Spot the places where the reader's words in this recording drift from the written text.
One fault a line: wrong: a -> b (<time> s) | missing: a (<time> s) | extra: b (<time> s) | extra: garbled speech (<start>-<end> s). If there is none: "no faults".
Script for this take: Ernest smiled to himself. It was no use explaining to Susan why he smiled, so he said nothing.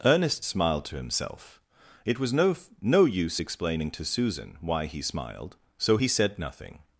extra: no (2.8 s)